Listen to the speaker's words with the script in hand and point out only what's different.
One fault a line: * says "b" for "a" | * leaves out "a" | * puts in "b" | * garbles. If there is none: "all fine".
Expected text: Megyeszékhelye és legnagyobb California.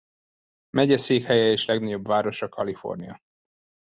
* puts in "városa"